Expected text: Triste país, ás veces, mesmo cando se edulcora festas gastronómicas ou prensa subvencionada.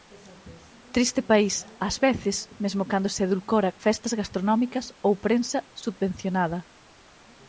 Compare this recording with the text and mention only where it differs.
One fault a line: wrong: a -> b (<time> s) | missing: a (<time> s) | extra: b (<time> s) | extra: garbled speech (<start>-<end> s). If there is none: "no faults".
no faults